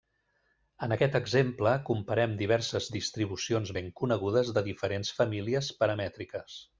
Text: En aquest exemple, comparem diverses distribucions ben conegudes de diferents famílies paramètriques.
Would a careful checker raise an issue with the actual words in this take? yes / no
no